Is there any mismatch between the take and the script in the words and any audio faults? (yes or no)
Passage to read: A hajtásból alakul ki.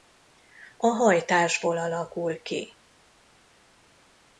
no